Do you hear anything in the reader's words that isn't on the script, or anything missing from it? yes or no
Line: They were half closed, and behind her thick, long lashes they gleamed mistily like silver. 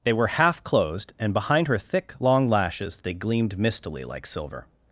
no